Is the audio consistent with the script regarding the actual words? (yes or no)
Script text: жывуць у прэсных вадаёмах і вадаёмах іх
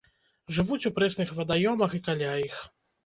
no